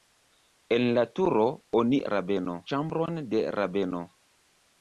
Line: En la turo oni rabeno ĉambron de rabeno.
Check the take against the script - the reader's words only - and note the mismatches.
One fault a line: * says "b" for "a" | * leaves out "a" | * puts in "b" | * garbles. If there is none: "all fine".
all fine